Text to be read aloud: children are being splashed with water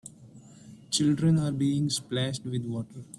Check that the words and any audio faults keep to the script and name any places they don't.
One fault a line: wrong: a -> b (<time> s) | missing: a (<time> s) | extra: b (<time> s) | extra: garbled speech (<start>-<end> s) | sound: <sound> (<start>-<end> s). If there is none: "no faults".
no faults